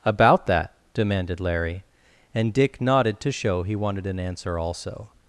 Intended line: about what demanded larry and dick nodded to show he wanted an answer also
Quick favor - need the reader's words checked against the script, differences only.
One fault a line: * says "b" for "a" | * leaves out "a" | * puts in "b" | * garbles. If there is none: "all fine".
* says "that" for "what"